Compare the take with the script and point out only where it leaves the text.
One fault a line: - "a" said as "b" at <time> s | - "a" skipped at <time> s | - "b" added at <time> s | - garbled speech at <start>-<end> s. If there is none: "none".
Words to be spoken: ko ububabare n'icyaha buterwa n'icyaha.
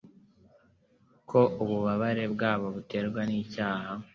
- "n'icyaha" said as "bwabo" at 2.3 s